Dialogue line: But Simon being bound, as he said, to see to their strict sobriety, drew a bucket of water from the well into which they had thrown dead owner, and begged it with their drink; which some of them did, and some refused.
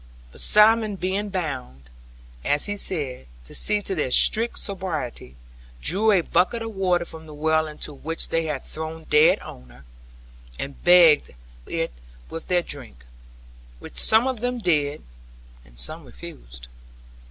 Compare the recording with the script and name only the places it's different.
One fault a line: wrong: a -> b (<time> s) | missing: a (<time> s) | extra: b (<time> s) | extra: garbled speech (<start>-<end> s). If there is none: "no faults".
no faults